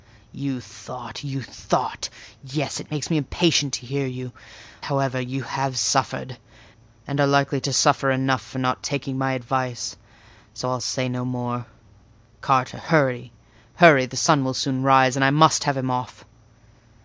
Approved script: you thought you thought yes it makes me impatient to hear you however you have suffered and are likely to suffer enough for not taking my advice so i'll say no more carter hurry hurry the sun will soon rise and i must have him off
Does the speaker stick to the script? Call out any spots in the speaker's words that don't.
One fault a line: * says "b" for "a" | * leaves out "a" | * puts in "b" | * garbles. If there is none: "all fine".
all fine